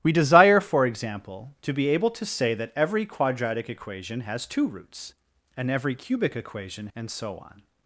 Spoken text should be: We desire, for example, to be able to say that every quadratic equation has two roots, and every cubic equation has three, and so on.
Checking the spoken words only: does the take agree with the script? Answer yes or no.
no